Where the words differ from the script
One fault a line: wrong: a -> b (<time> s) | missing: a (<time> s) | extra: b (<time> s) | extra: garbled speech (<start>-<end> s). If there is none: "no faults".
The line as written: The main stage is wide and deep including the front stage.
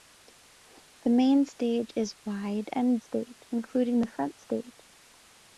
wrong: deep -> stage (3.0 s)